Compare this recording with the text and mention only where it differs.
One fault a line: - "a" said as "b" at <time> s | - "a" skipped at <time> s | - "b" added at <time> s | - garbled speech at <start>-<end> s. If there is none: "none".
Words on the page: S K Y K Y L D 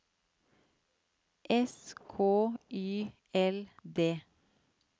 - "K Y" skipped at 3.1 s